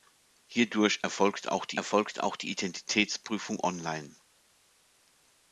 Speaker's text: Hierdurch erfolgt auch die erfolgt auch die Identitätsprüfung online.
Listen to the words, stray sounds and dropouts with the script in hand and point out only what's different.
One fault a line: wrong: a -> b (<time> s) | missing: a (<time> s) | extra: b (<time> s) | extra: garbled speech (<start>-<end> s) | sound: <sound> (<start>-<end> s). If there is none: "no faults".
no faults